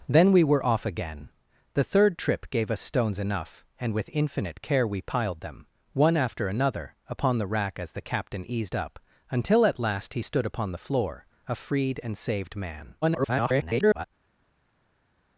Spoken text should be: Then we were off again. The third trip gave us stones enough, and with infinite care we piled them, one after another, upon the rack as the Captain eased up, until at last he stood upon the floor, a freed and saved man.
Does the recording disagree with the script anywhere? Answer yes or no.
yes